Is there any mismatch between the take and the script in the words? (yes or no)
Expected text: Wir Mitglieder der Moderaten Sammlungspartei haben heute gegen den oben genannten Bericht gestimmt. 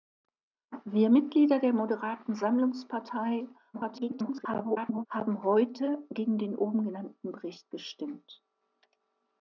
yes